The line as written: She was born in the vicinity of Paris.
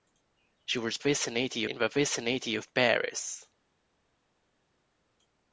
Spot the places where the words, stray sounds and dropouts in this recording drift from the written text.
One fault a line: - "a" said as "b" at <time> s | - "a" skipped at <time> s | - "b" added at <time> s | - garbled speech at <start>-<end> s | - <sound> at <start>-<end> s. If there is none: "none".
- "born" said as "vicinity" at 1.0 s